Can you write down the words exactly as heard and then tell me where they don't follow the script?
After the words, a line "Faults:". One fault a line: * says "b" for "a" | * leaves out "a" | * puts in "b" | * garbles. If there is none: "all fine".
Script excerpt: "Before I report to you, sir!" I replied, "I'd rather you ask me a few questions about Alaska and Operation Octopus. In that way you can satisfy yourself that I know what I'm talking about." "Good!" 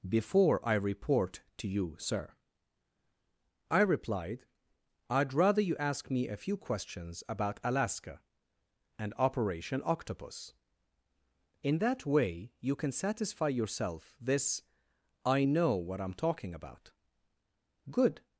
"Before I report to you, sir!" I replied, "I'd rather you ask me a few questions about Alaska and Operation Octopus. In that way you can satisfy yourself this I know what I'm talking about." "Good!"
Faults:
* says "this" for "that"